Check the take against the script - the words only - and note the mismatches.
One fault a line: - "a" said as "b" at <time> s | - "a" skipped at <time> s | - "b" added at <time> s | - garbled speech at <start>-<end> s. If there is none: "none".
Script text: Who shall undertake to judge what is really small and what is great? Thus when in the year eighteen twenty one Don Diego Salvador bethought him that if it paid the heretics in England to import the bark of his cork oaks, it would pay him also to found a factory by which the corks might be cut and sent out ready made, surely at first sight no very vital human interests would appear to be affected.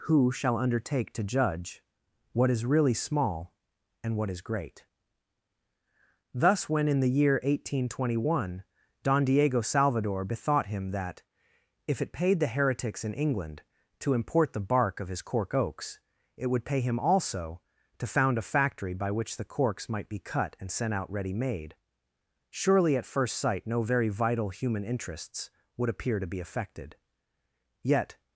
- "Yet" added at 27.8 s